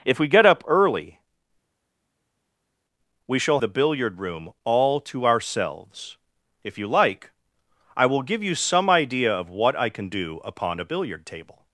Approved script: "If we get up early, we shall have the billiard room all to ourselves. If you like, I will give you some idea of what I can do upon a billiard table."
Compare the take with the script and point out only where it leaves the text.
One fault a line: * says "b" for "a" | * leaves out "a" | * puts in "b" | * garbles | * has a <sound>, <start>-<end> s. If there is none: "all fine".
* leaves out "have"